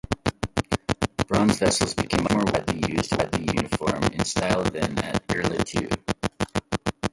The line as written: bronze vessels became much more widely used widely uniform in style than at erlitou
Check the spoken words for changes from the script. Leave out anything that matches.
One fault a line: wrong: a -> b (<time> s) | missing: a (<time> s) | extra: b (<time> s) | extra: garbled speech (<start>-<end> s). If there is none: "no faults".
no faults